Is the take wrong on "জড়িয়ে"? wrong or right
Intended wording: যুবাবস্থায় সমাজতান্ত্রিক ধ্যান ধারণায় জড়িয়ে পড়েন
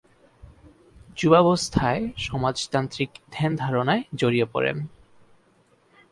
right